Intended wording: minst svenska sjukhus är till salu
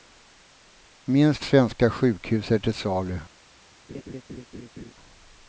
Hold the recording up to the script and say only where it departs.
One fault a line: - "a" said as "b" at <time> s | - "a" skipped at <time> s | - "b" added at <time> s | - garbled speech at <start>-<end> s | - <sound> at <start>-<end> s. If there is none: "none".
- laugh at 3.9-4.9 s